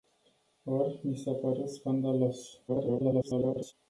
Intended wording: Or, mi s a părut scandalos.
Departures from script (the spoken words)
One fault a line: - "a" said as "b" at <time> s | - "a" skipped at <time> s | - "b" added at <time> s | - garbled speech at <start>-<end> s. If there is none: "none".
- garbled speech at 2.7-3.7 s